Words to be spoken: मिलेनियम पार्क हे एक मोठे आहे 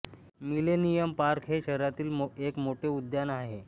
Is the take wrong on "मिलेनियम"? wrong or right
right